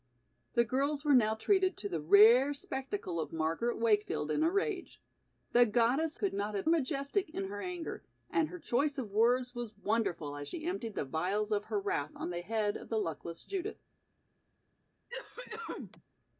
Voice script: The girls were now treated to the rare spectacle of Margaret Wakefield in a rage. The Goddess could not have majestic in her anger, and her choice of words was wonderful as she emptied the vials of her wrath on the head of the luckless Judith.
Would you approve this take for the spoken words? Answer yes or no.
yes